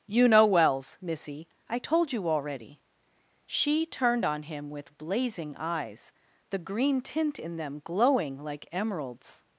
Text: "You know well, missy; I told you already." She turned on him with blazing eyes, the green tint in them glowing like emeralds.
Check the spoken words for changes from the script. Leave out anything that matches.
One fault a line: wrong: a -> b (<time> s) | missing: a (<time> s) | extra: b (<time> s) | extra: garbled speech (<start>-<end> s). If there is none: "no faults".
wrong: well -> wells (0.5 s)